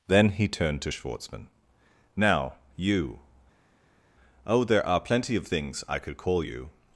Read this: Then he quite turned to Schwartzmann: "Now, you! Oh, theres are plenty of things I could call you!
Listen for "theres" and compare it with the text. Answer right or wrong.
wrong